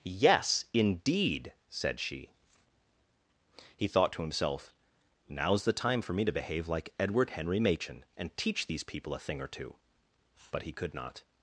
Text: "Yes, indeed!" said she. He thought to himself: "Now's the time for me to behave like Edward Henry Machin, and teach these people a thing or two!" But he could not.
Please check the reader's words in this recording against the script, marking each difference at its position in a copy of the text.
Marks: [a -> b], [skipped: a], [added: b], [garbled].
"Yes, indeed!" said she. He thought to himself: "Now's the time for me to behave like Edward Henry Machin, and teach these people a thing or two!" But he could not.